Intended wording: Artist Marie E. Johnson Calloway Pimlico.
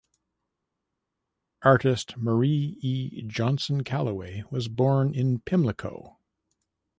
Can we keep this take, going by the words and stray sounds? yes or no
no